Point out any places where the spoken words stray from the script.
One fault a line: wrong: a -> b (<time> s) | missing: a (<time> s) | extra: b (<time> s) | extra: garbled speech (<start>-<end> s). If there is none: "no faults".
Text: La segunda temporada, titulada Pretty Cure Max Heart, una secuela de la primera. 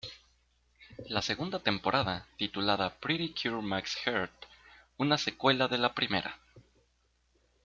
no faults